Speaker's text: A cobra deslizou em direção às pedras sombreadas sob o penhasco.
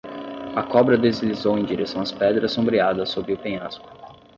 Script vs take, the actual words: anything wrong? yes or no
no